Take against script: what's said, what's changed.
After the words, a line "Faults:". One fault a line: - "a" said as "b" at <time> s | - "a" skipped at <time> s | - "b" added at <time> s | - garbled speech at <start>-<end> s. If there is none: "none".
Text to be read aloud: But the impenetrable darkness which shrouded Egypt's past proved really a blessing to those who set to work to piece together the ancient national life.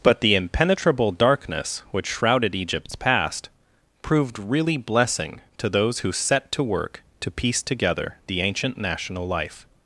But the impenetrable darkness which shrouded Egypt's past proved really blessing to those who set to work to piece together the ancient national life.
Faults:
- "a" skipped at 4.8 s